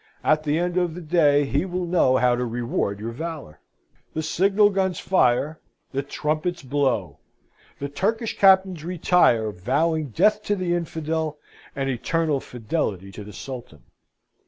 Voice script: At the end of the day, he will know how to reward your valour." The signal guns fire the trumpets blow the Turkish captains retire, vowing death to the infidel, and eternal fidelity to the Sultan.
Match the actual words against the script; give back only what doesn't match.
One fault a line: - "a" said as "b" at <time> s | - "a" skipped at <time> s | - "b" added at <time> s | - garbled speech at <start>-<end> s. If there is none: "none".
none